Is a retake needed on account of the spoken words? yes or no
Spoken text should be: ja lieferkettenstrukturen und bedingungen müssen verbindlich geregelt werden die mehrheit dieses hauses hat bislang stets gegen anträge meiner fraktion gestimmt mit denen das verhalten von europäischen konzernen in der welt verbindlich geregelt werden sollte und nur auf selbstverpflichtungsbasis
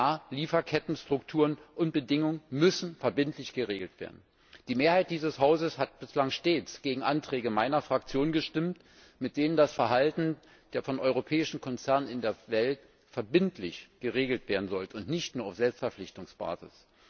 yes